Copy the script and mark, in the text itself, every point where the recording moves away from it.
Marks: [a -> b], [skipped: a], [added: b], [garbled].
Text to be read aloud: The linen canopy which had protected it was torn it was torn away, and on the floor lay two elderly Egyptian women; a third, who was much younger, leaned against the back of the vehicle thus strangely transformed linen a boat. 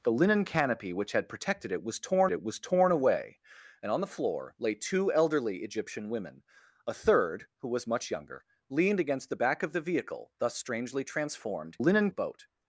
The linen canopy which had protected it was torn it was torn away, and on the floor lay two elderly Egyptian women; a third, who was much younger, leaned against the back of the vehicle thus strangely transformed linen a boat.